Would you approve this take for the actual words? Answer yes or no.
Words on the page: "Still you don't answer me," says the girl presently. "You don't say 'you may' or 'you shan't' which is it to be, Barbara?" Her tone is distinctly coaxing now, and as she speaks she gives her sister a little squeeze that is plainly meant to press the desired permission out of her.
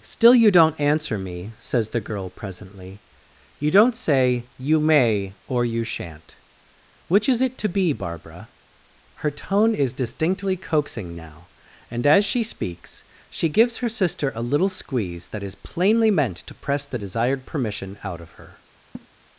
yes